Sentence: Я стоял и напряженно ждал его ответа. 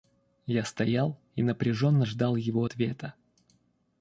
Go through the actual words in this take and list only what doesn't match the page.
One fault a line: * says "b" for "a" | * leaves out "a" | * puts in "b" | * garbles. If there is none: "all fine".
all fine